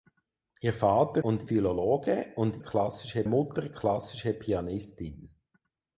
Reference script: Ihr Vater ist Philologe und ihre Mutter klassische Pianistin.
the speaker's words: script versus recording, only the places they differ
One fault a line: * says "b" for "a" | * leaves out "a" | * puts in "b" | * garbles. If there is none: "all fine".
* says "und" for "ist"
* says "klassische" for "ihre"